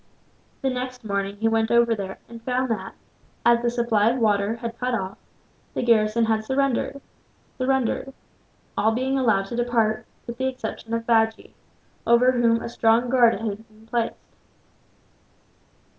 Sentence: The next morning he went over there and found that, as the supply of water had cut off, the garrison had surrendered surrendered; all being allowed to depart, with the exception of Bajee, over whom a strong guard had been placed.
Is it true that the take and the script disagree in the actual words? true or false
false